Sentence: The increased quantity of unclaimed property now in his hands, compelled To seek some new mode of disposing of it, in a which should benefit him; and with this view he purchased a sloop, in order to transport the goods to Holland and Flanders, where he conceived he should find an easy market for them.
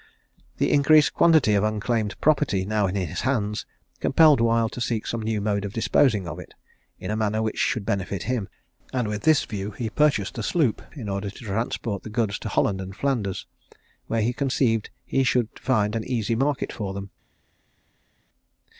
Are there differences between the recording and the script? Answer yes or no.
yes